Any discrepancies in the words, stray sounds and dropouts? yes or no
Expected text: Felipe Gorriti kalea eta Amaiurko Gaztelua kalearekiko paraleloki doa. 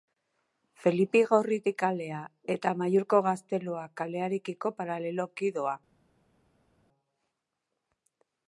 no